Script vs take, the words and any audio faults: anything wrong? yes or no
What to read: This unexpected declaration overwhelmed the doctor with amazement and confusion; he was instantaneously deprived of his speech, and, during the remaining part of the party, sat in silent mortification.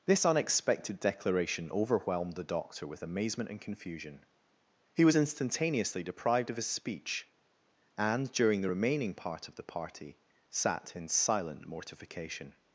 no